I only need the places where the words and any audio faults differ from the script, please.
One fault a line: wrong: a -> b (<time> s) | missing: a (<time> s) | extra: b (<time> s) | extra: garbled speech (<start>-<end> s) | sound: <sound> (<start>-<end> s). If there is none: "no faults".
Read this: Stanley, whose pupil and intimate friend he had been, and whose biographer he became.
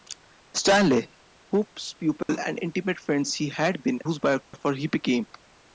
sound: dropout (2.2-2.3 s)
missing: and (4.0 s)
sound: dropout (4.4-4.5 s)